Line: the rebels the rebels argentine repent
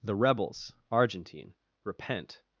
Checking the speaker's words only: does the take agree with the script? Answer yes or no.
no